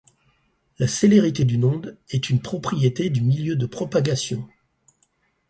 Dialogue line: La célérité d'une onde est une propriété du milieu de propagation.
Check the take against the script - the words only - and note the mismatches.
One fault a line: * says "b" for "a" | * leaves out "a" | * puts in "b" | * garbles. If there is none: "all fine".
all fine